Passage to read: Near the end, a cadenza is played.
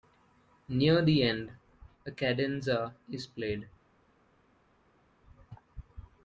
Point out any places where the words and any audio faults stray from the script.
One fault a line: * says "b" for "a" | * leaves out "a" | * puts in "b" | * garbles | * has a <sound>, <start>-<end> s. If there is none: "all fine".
all fine